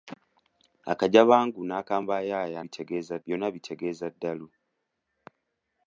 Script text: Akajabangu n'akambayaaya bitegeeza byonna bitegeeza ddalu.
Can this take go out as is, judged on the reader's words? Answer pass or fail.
pass